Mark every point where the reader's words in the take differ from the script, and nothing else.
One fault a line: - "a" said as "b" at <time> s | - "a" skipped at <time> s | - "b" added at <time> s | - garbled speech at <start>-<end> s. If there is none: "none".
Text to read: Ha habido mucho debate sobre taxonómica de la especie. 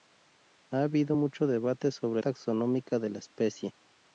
none